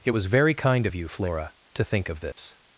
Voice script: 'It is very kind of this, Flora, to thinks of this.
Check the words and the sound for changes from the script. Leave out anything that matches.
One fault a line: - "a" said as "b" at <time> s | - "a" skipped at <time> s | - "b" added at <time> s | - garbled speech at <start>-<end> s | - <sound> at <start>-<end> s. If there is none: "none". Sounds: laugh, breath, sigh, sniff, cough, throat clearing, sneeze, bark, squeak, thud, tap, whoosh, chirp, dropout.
- "is" said as "was" at 0.1 s
- "this" said as "you" at 0.9 s
- "thinks" said as "think" at 1.8 s
- dropout at 2.3-2.4 s